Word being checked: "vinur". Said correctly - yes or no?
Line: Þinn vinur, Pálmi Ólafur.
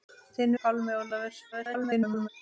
no